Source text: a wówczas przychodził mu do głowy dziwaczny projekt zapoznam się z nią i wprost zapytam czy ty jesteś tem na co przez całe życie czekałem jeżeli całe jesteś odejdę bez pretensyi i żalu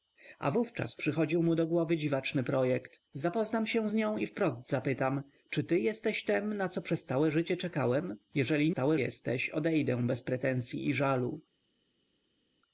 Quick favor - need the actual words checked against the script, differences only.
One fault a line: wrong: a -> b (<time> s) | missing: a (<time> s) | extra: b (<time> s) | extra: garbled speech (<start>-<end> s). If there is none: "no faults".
no faults